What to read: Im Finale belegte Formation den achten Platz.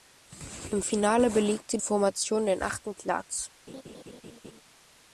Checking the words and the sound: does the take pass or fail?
fail